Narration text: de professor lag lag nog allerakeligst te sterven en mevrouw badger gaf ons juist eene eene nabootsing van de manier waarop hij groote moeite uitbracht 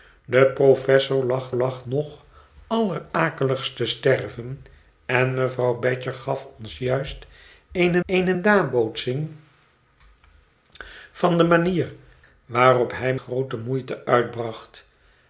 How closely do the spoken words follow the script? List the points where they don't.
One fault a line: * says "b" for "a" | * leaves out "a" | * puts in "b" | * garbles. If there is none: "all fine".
all fine